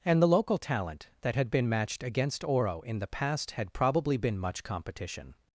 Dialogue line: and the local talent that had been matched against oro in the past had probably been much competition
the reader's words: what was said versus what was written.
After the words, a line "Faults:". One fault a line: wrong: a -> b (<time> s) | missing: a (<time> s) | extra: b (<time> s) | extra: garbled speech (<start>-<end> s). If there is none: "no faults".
and the local talent that had been matched against oro in the past had probably been much competition
Faults:
no faults